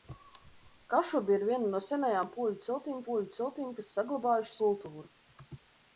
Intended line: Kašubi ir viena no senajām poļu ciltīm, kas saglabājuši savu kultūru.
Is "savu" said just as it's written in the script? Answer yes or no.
no